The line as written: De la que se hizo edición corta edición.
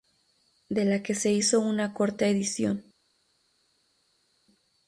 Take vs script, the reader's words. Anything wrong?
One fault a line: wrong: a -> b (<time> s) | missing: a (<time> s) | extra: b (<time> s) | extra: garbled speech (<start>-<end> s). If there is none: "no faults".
wrong: edición -> una (1.6 s)